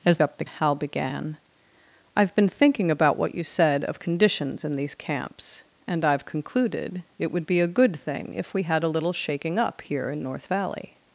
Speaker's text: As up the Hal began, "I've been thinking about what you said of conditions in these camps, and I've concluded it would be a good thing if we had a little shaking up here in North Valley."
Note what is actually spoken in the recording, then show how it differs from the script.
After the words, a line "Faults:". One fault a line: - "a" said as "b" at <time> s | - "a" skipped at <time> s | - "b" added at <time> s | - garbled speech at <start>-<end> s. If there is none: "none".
As up the Hal began, "I've been thinking about what you said of conditions in these camps, and I've concluded it would be a good thing if we had a little shaking up here in North Valley."
Faults:
none